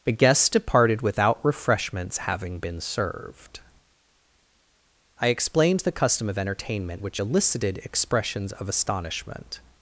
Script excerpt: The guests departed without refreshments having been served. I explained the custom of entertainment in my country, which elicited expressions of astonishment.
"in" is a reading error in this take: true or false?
true